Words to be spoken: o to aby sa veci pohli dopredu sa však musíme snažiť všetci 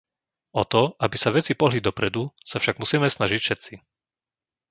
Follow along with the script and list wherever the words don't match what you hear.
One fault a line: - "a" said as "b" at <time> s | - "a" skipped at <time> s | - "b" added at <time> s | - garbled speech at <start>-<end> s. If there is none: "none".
none